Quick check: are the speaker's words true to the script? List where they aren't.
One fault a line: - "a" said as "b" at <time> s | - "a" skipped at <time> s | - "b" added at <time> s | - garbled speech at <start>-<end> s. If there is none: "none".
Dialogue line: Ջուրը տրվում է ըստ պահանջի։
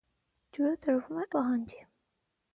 - "ըստ" skipped at 1.3 s